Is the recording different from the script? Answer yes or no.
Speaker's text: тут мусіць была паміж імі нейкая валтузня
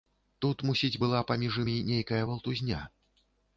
no